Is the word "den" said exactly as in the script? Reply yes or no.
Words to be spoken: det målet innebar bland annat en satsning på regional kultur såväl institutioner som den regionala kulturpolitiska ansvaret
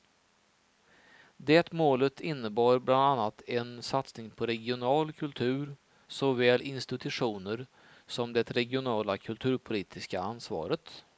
no